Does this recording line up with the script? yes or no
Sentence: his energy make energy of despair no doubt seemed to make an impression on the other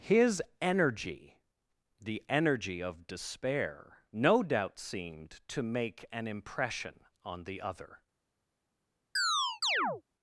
no